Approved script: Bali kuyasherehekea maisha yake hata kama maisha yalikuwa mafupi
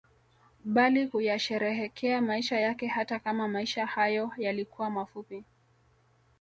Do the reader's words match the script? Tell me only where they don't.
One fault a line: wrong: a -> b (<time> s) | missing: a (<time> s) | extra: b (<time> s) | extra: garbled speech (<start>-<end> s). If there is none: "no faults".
extra: hayo (3.9 s)